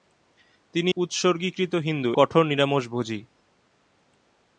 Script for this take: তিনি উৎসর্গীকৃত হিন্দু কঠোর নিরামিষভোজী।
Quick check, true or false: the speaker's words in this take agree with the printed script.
true